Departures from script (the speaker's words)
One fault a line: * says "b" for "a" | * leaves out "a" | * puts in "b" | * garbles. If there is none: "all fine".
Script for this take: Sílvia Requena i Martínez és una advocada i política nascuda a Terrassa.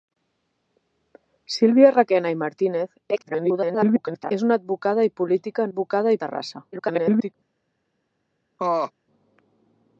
* garbles
* says "advocada" for "nascuda"
* garbles